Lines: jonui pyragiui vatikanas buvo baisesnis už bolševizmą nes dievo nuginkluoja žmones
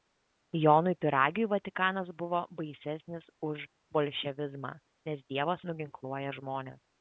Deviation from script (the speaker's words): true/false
false